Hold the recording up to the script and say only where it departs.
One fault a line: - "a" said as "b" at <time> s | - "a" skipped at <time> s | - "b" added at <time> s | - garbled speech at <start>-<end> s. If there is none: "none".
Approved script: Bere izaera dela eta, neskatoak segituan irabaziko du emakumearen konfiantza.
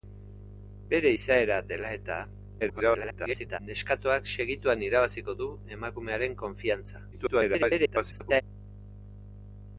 - garbled speech at 2.6-3.6 s
- garbled speech at 7.1-8.4 s